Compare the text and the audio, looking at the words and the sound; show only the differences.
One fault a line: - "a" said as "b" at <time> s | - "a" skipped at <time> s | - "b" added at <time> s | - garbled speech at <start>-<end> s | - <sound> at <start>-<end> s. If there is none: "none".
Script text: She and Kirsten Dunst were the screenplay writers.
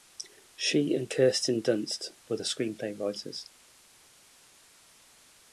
none